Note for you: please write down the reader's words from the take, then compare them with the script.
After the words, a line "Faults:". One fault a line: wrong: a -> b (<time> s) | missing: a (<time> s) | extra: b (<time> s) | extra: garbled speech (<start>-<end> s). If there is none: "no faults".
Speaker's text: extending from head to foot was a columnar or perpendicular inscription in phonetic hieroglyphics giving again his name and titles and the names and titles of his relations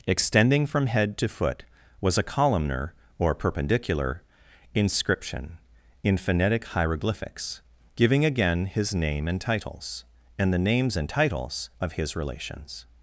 extending from head to foot was a columnar or perpendicular inscription in phonetic hieroglyphics giving again his name and titles and the names and titles of his relations
Faults:
no faults